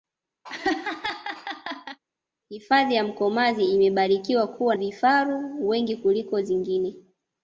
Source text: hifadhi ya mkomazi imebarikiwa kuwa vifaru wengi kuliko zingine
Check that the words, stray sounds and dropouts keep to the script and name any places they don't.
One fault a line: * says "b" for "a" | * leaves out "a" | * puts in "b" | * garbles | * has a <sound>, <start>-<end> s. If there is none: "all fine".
* has a laugh, 0.4-2.0 s